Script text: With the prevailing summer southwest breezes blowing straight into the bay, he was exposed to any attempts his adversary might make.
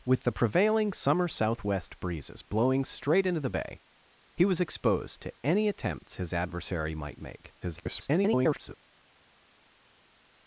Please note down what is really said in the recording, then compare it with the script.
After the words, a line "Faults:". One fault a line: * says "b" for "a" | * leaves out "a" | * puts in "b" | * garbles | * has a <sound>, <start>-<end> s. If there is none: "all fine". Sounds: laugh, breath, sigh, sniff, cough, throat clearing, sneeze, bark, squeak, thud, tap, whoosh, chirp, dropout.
With the prevailing summer southwest breezes blowing straight into the bay, he was exposed to any attempts his adversary might make. [garbled]
Faults:
* garbles